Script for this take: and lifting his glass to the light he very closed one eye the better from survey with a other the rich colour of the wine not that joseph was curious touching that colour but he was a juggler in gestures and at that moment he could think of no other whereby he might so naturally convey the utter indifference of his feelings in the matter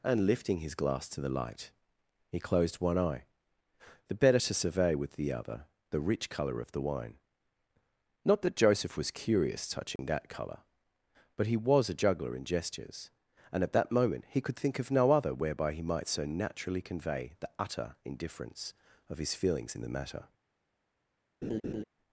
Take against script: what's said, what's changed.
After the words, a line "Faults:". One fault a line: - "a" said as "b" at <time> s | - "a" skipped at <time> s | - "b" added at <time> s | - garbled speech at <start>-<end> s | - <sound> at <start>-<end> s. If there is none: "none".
and lifting his glass to the light he closed one eye the better to survey with the other the rich colour of the wine not that joseph was curious touching that colour but he was a juggler in gestures and at that moment he could think of no other whereby he might so naturally convey the utter indifference of his feelings in the matter
Faults:
- "very" skipped at 2.4 s
- "from" said as "to" at 4.4 s
- "a" said as "the" at 5.1 s
- dropout at 10.0-10.0 s
- laugh at 21.4-21.8 s